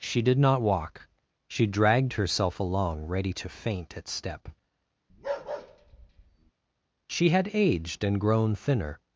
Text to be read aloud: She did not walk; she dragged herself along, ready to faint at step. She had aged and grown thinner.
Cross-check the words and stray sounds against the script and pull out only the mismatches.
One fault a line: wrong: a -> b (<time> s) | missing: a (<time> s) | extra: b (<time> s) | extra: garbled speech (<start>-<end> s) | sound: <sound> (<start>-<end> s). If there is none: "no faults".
sound: bark (5.1-6.5 s)